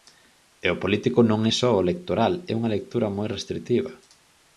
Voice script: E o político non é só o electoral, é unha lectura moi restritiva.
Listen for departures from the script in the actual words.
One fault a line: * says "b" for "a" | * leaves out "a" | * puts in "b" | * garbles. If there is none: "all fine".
all fine